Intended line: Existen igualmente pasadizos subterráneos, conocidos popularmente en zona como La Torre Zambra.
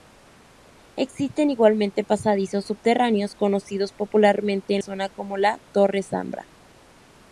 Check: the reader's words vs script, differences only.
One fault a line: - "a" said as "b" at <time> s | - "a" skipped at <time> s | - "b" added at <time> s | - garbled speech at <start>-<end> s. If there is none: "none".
none